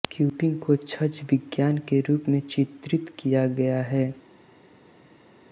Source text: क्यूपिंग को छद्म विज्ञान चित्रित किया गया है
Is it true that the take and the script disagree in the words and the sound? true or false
true